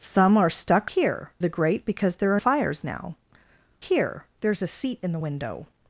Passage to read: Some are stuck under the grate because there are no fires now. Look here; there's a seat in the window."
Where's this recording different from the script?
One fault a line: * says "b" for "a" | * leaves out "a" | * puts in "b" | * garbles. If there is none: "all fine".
* says "here" for "under"
* leaves out "no"
* leaves out "Look"